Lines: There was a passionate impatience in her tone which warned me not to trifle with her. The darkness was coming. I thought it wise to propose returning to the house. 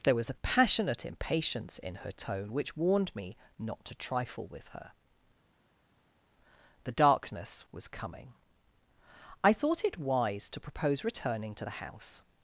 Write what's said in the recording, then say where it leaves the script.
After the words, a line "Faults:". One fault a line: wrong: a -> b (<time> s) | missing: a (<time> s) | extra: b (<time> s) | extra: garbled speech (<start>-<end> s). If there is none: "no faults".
There was a passionate impatience in her tone which warned me not to trifle with her. The darkness was coming. I thought it wise to propose returning to the house.
Faults:
no faults